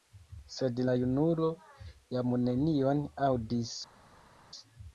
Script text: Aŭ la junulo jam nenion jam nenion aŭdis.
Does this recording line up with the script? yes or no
no